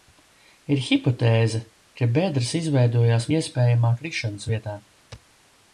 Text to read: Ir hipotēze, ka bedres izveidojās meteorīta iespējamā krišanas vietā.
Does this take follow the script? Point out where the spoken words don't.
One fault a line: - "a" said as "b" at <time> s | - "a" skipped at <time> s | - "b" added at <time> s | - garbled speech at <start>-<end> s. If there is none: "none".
- "meteorīta" skipped at 3.3 s